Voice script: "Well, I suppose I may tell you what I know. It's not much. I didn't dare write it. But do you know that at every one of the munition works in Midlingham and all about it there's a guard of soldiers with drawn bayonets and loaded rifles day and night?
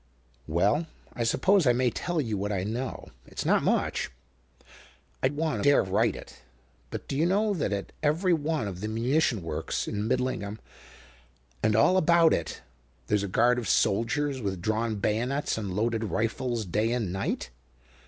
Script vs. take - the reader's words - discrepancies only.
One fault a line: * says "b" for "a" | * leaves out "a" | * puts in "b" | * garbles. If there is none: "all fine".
* says "one" for "didn't"